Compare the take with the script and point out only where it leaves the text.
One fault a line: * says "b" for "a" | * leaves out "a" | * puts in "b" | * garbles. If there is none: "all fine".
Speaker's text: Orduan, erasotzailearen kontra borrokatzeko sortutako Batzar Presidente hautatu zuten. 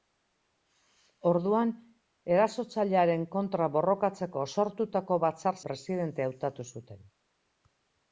all fine